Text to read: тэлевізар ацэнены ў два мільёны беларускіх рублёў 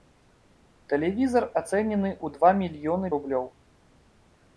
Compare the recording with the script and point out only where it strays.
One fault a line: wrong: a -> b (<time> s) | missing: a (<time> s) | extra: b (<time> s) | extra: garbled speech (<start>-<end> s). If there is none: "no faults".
missing: беларускіх (3.1 s)